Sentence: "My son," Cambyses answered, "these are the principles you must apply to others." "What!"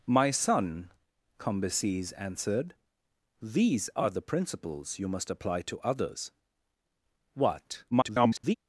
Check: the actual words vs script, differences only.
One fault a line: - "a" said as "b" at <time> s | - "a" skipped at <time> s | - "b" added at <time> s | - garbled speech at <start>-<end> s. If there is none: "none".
- garbled speech at 7.9-8.5 s